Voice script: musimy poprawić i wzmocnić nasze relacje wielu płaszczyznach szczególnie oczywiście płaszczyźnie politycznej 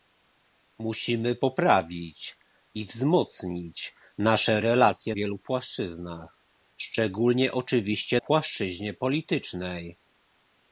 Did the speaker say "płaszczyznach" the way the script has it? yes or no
yes